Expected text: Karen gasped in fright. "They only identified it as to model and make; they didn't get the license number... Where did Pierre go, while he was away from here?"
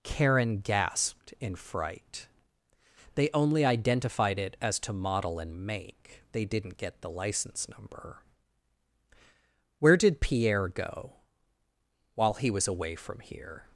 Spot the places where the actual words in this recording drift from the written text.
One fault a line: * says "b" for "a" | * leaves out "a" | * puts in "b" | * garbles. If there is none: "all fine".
all fine